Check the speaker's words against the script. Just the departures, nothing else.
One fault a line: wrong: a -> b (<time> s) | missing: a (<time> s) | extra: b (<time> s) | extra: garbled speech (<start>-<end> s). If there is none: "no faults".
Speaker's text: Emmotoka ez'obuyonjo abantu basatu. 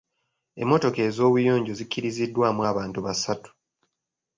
extra: zikkiriziddwamu (1.8 s)